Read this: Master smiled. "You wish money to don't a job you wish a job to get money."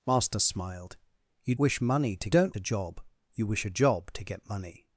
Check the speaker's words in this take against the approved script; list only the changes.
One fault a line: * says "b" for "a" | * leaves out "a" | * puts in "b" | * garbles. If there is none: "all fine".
all fine